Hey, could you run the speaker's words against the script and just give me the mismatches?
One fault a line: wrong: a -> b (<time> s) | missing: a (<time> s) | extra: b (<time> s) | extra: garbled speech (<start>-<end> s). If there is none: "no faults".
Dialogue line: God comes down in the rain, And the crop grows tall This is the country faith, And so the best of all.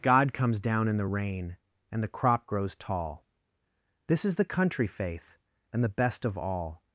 missing: so (5.8 s)